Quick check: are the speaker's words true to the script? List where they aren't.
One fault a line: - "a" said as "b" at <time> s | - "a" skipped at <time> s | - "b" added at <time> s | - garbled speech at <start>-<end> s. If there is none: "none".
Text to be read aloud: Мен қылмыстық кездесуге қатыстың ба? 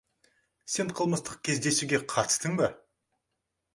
- "Мен" said as "Сен" at 0.8 s